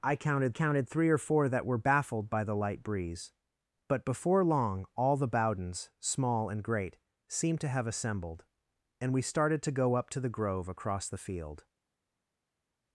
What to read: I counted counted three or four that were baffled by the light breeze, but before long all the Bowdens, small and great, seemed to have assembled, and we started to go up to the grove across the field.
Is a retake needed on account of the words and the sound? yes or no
no